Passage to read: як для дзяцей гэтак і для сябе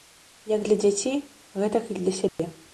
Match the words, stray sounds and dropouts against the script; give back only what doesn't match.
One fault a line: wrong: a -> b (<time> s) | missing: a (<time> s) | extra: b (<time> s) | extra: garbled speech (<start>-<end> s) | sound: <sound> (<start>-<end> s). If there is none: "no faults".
sound: dropout (2.3-2.4 s)